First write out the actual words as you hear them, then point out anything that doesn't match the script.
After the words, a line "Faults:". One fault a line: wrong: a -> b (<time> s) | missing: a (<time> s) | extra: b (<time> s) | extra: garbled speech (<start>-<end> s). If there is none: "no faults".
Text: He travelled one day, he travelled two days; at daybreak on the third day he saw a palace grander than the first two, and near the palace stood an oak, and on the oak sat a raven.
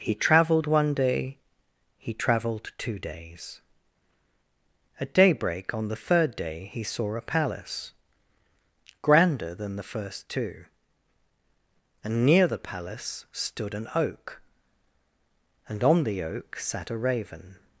He travelled one day, he travelled two days; at daybreak on the third day he saw a palace grander than the first two, and near the palace stood an oak, and on the oak sat a raven.
Faults:
no faults